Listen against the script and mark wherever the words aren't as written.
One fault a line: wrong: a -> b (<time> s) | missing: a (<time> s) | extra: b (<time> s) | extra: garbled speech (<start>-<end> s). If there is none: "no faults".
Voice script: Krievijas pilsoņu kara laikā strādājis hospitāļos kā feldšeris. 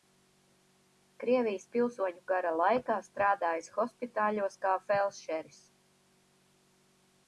no faults